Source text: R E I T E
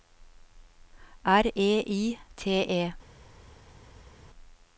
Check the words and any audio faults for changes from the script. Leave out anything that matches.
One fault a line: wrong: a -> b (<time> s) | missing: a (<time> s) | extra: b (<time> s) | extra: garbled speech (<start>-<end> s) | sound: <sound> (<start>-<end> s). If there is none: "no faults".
no faults